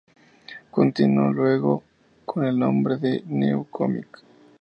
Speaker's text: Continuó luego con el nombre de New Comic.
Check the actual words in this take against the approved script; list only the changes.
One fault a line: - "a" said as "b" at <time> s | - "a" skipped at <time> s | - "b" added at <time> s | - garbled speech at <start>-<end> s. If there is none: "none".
none